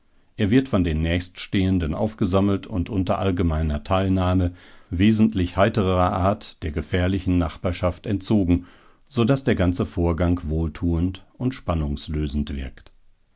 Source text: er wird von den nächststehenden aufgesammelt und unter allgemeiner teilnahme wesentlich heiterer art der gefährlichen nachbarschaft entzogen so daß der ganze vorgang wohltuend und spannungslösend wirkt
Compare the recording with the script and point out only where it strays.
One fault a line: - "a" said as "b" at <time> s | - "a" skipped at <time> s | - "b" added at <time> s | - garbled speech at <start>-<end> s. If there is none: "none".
none